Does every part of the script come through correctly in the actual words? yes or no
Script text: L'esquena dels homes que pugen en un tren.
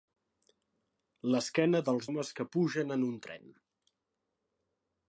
yes